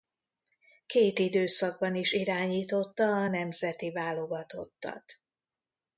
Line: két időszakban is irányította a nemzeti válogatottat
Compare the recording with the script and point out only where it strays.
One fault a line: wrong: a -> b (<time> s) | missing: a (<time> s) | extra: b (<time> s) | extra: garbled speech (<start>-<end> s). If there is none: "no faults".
no faults